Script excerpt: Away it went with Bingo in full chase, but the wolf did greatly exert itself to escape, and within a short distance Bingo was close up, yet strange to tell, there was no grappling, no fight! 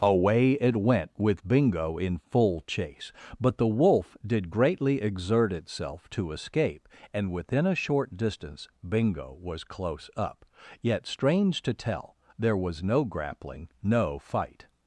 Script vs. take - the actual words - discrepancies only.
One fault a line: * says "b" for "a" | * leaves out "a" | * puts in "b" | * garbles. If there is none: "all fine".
all fine